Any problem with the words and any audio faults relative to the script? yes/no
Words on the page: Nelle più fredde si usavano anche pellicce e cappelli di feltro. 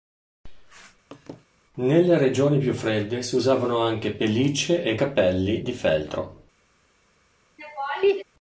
yes